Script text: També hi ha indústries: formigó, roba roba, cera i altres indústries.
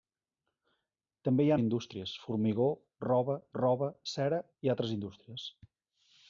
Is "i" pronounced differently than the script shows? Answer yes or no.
no